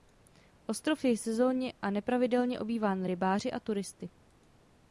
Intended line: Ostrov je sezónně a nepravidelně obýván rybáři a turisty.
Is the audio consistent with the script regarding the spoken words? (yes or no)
yes